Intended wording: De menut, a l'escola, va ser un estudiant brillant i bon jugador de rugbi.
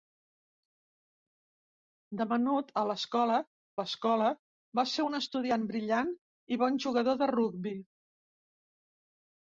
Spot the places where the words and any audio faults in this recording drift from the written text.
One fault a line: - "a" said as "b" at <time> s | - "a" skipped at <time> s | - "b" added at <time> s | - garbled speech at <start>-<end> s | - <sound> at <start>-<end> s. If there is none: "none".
- "l'escola" added at 3.8 s